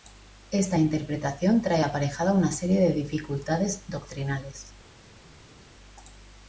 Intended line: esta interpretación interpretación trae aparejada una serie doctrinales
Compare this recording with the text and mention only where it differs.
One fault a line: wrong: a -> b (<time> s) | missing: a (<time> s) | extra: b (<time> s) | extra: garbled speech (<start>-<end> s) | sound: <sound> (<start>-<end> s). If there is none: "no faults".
missing: interpretación (1.6 s)
extra: de dificultades (2.8 s)